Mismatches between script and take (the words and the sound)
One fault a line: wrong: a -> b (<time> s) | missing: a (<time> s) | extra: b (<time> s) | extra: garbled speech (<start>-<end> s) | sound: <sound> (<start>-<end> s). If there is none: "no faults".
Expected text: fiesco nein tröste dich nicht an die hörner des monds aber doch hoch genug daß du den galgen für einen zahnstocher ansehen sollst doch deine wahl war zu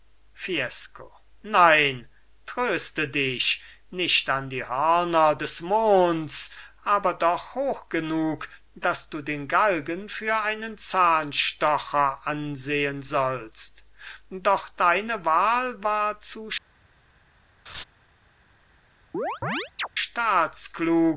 sound: laugh (17.7-17.8 s)
sound: chirp (19.1-19.9 s)